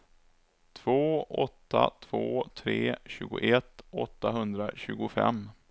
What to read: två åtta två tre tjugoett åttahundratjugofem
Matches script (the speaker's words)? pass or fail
pass